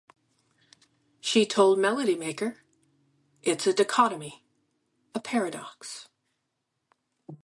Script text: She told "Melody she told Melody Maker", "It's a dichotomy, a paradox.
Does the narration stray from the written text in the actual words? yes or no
yes